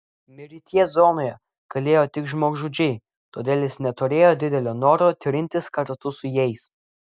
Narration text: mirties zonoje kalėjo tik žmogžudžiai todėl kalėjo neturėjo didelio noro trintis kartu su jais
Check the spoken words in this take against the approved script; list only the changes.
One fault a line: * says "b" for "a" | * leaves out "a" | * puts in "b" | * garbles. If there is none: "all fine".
* says "jis" for "kalėjo"